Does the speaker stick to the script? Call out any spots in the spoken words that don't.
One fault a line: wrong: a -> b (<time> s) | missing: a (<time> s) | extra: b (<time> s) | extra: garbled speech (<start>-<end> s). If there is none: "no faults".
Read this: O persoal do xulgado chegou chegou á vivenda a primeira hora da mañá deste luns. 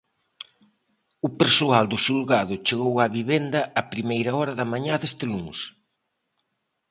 missing: chegou (2.9 s)